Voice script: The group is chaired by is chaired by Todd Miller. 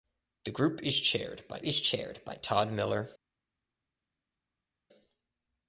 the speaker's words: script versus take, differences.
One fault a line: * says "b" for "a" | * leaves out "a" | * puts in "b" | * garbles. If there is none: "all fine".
all fine